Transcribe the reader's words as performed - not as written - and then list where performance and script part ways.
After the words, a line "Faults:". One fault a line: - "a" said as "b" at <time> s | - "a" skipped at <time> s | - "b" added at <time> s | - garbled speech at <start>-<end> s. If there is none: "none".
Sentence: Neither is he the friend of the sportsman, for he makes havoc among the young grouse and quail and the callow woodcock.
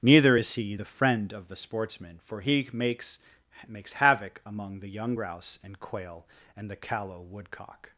Neither is he the friend of the sportsman, for he makes makes havoc among the young grouse and quail and the callow woodcock.
Faults:
- "makes" added at 3.7 s